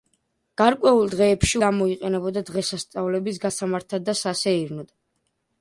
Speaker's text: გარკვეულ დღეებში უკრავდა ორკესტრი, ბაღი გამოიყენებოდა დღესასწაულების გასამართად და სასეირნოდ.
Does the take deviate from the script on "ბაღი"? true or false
true